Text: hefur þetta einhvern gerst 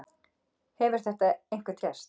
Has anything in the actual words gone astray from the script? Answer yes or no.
no